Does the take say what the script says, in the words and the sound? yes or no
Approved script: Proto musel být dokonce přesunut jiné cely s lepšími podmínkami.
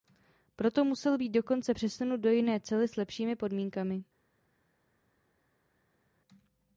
no